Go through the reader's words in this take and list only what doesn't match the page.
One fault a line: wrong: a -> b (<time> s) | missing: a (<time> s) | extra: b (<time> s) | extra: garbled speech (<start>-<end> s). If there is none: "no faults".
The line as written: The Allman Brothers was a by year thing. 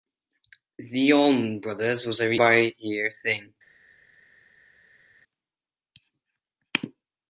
no faults